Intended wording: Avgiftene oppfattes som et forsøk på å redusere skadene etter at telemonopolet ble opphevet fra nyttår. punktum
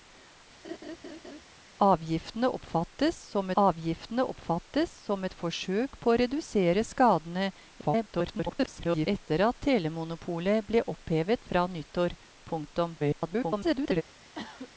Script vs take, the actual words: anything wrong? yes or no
yes